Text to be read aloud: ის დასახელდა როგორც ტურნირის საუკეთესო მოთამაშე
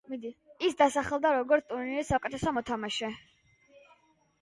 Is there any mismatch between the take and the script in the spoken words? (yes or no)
no